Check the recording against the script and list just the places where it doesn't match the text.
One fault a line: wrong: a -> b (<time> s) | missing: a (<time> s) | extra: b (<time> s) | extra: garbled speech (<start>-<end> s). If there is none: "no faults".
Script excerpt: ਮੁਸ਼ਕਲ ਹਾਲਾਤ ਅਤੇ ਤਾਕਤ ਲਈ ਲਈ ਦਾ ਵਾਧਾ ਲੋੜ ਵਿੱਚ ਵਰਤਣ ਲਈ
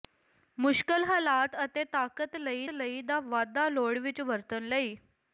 no faults